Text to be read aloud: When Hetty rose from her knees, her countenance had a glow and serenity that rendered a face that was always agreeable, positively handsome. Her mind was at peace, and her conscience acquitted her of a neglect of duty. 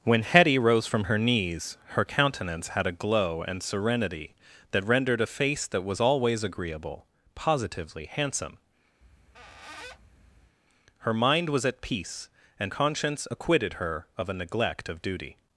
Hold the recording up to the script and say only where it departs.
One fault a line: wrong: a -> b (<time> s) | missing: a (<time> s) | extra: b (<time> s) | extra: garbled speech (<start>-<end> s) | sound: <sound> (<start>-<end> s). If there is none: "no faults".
sound: squeak (9.0-10.6 s)
missing: her (12.7 s)